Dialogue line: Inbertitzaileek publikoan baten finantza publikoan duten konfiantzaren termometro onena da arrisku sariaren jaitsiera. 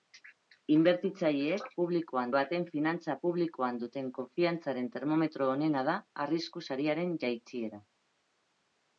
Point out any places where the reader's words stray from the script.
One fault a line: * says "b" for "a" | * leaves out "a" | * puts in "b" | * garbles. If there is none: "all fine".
all fine